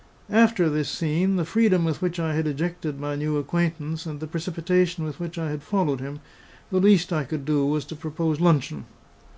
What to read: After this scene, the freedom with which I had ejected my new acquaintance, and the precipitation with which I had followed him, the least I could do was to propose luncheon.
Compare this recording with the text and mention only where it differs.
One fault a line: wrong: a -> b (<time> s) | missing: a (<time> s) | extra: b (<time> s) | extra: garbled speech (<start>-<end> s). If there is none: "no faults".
no faults